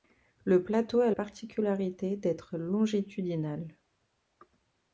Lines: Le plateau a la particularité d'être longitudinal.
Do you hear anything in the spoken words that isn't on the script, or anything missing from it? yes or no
yes